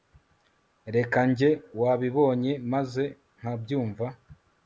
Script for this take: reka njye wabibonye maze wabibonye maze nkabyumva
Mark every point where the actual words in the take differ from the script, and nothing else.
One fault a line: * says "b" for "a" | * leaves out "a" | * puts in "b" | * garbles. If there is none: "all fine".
* leaves out "wabibonye maze"